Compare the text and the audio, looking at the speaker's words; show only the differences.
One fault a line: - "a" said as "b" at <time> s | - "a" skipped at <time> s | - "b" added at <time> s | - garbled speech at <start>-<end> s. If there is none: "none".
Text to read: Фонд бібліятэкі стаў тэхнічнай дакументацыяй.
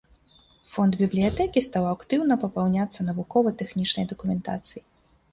- "актыўна папаўняцца навукова" added at 1.9 s